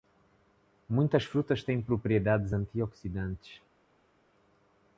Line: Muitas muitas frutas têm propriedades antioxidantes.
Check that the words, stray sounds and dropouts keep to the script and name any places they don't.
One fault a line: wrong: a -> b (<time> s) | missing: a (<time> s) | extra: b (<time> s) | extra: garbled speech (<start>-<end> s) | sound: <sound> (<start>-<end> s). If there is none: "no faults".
missing: muitas (1.2 s)